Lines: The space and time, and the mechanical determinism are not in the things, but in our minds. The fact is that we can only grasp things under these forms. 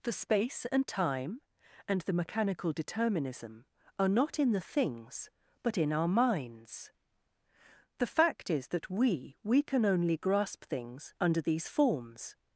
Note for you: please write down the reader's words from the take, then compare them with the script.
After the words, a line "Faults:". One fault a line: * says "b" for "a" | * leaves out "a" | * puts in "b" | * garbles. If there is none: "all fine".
The space and time, and the mechanical determinism are not in the things, but in our minds. The fact is that we we can only grasp things under these forms.
Faults:
* puts in "we"